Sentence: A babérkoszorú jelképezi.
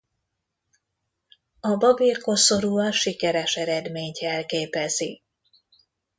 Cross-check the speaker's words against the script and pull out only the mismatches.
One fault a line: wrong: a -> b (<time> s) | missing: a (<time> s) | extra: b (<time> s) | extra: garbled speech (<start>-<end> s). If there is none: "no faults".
extra: a sikeres eredményt (2.8 s)